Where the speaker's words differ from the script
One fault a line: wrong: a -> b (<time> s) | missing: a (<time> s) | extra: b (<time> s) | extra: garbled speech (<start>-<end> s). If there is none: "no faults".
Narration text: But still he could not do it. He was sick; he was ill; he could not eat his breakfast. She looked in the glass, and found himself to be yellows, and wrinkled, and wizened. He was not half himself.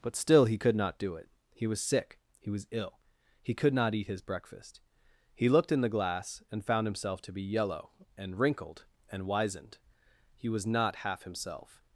wrong: She -> He (5.3 s)
wrong: yellows -> yellow (7.4 s)